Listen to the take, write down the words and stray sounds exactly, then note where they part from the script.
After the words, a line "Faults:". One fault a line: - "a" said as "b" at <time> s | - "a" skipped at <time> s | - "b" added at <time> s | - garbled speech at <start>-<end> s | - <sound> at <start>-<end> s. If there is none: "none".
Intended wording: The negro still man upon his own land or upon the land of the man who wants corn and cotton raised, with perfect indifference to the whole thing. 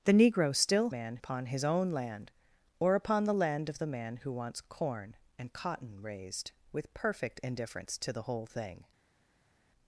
The negro still man upon his own land or upon the land of the man who wants corn and cotton raised, with perfect indifference to the whole thing.
Faults:
none